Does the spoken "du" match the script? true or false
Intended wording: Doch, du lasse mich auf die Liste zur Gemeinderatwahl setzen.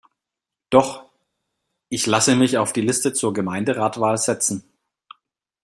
false